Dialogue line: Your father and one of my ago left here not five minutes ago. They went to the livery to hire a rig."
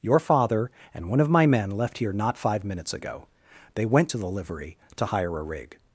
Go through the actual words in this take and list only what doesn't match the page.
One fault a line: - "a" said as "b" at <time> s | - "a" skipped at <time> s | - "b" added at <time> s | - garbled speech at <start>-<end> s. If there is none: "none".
- "ago" said as "men" at 1.4 s